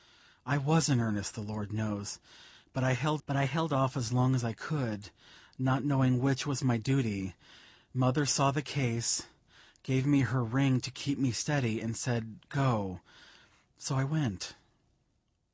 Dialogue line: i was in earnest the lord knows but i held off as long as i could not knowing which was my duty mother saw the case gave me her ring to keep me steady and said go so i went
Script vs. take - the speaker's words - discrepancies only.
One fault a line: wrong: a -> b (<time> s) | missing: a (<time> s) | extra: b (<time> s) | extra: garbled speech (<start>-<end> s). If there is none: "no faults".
extra: but i held (3.3 s)